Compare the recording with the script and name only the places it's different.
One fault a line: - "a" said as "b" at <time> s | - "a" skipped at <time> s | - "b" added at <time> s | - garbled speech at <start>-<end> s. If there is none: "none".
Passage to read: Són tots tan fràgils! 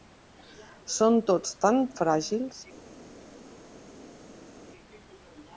none